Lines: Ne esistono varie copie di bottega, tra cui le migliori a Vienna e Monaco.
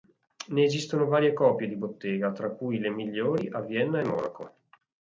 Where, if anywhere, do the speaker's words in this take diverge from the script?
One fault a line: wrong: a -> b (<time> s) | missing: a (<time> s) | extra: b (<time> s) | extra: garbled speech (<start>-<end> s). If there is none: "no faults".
no faults